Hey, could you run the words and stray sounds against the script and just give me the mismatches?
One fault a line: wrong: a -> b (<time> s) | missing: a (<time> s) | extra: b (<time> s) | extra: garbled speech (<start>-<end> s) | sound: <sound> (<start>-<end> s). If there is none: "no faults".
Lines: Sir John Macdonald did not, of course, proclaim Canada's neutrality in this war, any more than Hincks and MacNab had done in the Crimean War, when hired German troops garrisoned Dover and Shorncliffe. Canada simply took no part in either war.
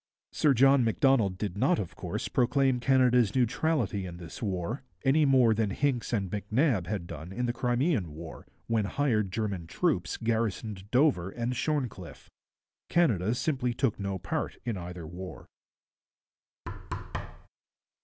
sound: thud (16.7-17.5 s)